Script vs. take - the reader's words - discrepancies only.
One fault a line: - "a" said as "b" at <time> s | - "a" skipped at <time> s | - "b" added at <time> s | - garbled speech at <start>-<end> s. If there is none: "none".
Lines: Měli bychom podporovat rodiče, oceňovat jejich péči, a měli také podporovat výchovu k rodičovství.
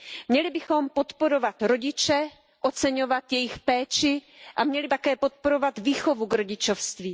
none